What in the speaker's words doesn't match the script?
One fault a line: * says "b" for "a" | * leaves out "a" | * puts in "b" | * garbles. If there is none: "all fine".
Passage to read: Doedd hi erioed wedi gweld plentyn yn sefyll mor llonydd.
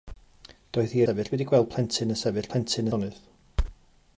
* says "sefyll" for "erioed"
* says "plentyn" for "mor"